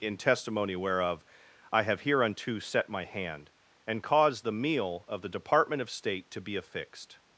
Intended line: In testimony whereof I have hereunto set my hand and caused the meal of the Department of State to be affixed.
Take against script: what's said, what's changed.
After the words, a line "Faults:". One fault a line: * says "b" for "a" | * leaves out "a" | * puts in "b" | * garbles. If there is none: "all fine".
In testimony whereof I have hereunto set my hand and caused the meal of the Department of State to be affixed.
Faults:
all fine